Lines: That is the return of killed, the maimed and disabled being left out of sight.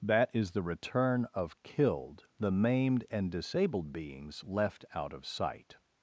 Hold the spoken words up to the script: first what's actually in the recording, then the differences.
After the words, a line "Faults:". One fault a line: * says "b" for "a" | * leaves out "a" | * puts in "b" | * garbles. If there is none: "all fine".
That is the return of killed, the maimed and disabled beings left out of sight.
Faults:
* says "beings" for "being"